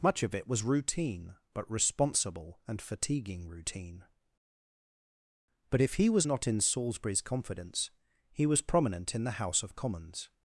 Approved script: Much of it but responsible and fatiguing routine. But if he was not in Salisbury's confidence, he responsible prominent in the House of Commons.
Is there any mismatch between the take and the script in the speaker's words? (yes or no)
yes